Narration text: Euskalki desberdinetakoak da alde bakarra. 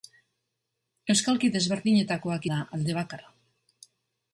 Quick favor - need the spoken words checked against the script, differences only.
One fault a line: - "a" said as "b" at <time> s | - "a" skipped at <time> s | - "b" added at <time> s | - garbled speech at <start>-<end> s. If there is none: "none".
none